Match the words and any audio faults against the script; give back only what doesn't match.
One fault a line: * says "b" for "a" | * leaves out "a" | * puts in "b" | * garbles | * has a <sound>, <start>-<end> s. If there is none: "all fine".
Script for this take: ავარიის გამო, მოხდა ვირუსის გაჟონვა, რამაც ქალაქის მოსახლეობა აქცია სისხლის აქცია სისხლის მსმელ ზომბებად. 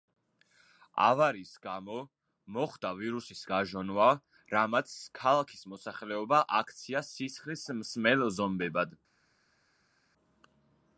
* leaves out "აქცია სისხლის"